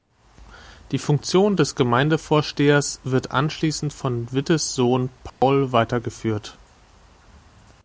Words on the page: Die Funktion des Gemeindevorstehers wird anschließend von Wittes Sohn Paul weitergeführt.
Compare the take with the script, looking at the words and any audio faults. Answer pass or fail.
fail